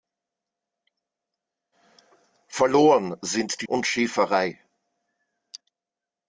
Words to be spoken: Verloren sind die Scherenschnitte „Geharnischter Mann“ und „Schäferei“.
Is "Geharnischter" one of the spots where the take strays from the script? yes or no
yes